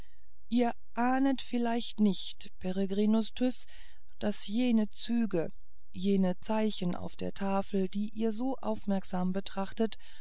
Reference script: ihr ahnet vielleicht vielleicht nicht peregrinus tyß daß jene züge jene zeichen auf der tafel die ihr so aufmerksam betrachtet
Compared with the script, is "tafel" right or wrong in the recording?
right